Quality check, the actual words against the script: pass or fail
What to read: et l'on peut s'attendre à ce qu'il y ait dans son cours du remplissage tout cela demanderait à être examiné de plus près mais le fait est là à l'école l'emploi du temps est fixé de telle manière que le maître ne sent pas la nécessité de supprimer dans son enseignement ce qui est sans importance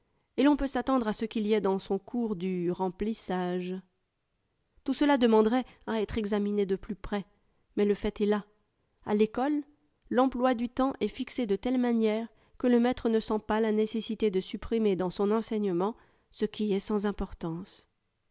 pass